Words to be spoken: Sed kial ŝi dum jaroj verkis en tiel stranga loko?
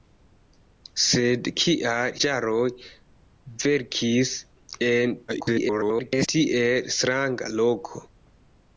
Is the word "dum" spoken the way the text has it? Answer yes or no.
no